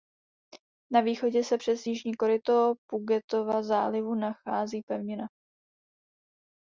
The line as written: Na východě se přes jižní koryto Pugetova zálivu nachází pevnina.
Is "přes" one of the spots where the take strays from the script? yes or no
no